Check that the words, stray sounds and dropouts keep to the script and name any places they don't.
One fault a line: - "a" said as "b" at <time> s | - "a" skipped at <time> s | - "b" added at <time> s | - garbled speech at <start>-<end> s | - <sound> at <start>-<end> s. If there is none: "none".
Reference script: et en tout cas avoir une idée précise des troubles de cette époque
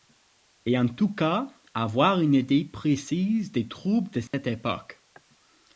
- dropout at 4.3-4.3 s